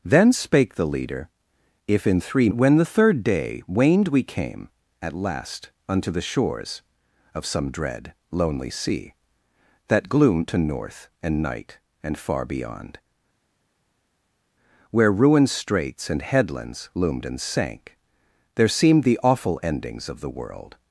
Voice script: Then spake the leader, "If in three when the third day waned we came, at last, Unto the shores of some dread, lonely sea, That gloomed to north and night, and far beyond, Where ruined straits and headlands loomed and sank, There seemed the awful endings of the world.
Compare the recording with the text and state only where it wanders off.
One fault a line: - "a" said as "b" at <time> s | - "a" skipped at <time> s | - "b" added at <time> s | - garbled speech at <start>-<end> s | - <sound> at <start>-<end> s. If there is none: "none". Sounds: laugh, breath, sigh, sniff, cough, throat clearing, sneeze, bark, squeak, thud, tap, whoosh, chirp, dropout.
none